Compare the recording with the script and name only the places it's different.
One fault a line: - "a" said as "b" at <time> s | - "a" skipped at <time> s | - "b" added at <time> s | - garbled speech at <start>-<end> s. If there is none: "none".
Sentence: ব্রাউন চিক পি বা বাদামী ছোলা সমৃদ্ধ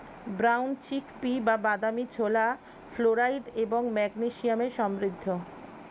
- "ফ্লোরাইড এবং ম্যাগনেসিয়ামে" added at 2.9 s